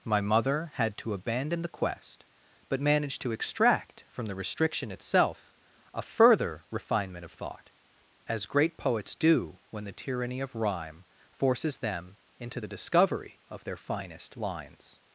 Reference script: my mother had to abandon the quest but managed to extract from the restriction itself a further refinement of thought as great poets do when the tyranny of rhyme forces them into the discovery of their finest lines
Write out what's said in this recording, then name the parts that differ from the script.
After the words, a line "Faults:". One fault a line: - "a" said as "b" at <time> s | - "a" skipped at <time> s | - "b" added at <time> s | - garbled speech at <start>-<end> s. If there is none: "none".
my mother had to abandon the quest but managed to extract from the restriction itself a further refinement of thought as great poets do when the tyranny of rhyme forces them into the discovery of their finest lines
Faults:
none